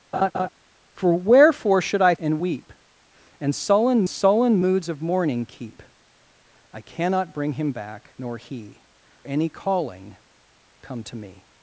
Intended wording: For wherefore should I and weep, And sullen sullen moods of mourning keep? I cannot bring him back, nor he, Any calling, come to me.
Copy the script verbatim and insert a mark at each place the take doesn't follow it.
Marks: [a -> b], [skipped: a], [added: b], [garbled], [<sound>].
[laugh] For wherefore should I and weep, And sullen sullen moods of mourning keep? I cannot bring him back, nor he, Any calling, come to me.